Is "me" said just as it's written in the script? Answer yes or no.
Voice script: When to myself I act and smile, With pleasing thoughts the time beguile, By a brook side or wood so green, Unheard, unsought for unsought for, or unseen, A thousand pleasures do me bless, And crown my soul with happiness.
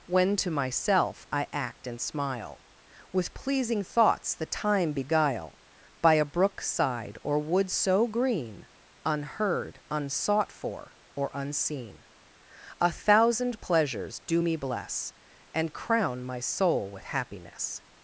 yes